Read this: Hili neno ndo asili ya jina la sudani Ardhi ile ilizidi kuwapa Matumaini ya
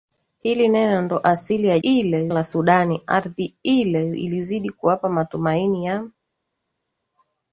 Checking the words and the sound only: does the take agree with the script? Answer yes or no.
no